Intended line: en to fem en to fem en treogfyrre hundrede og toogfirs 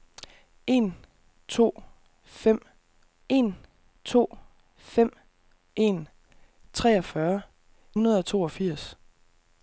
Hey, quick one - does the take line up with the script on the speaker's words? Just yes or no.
yes